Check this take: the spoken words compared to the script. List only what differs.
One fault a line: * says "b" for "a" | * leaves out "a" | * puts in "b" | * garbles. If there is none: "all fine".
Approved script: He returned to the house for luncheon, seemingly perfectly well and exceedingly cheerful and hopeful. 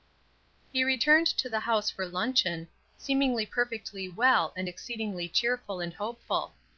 all fine